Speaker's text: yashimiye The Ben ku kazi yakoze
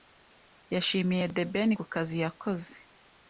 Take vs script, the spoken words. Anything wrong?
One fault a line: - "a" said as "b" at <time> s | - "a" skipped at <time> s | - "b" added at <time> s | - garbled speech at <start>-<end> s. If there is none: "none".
none